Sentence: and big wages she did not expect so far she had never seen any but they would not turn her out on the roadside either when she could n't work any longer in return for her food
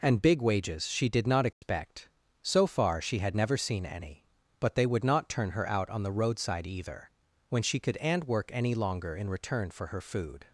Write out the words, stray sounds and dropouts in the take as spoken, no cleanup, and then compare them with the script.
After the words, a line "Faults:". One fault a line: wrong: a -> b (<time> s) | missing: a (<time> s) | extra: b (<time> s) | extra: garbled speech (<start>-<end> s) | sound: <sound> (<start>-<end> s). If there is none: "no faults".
and big wages she did not expect so far she had never seen any but they would not turn her out on the roadside either when she could and work any longer in return for her food
Faults:
sound: dropout (1.5-1.6 s)
wrong: n't -> and (8.0 s)